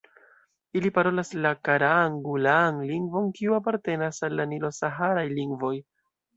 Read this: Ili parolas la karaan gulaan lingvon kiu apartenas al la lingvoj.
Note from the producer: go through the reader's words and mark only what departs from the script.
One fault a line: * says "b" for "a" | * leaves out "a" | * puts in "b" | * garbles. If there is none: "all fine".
* puts in "nilo saharaj"